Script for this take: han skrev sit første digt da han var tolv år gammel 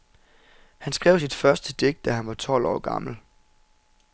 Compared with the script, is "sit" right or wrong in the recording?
right